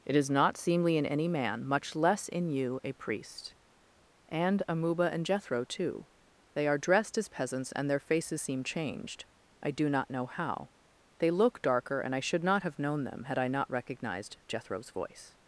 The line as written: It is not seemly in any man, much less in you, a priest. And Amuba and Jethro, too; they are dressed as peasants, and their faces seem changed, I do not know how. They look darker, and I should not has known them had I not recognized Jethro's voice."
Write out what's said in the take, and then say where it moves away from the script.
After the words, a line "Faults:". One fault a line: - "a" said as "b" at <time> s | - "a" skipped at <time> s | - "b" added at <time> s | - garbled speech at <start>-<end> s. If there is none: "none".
It is not seemly in any man, much less in you, a priest. And Amuba and Jethro, too; they are dressed as peasants, and their faces seem changed, I do not know how. They look darker, and I should not have known them had I not recognized Jethro's voice."
Faults:
- "has" said as "have" at 12.6 s